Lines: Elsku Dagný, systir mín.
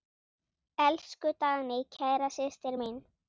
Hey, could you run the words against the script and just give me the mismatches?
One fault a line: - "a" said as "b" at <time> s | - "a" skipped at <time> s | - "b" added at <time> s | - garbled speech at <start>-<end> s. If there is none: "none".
- "kæra" added at 2.0 s